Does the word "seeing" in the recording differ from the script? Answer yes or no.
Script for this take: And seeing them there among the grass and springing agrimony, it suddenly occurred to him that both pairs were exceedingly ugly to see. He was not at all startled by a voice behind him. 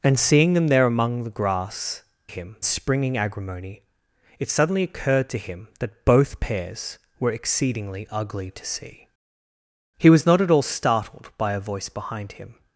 no